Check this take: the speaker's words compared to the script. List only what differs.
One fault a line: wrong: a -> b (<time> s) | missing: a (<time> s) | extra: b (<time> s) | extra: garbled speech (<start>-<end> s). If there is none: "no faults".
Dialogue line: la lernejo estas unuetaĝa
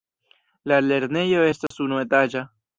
no faults